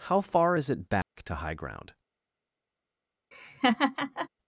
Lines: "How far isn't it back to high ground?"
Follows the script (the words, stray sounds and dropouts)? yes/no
no